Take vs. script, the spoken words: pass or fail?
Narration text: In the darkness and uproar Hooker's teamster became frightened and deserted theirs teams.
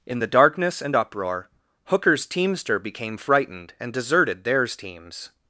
pass